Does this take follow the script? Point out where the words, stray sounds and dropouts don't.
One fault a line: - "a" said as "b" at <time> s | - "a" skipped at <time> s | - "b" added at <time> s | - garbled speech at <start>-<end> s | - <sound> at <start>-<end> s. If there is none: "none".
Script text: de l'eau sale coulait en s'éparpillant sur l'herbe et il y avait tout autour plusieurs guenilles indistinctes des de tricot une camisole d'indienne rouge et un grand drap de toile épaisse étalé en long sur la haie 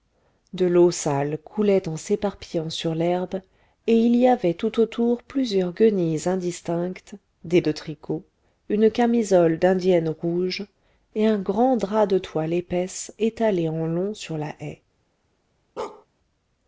- bark at 15.8-16.1 s